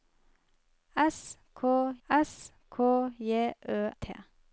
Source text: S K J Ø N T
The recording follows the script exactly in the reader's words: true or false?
false